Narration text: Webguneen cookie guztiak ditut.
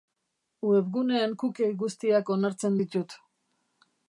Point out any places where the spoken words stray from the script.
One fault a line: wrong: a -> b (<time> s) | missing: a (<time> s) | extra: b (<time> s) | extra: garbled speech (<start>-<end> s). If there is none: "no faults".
extra: onartzen (2.4 s)